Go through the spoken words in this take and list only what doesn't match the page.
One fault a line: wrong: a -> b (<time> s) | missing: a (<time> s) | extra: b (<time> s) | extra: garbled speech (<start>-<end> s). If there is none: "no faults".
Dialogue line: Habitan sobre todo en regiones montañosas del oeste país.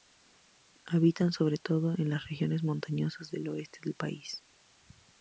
extra: las (2.1 s)
extra: del (3.8 s)